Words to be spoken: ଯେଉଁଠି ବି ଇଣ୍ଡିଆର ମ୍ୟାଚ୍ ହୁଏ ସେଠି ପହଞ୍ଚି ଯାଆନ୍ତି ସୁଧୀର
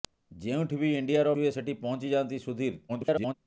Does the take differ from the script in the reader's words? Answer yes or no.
yes